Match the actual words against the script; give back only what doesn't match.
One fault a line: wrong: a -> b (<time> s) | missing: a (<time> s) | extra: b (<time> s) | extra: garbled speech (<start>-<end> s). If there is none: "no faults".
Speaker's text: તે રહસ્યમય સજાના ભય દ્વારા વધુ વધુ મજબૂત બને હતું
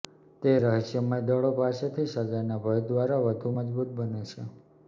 extra: દળો પાસેથી (1.2 s)
missing: વધુ (3.5 s)
wrong: હતું -> છે (4.2 s)